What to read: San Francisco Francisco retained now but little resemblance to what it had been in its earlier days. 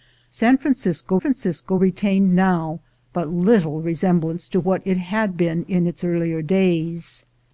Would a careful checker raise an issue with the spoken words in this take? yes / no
no